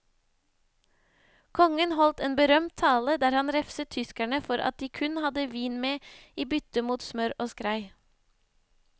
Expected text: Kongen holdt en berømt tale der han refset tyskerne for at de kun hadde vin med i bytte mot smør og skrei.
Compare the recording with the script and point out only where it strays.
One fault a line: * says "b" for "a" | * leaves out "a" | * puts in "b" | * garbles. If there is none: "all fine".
all fine